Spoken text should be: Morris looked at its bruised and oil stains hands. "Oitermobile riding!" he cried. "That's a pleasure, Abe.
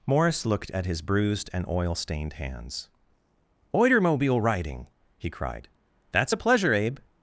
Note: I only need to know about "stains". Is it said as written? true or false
false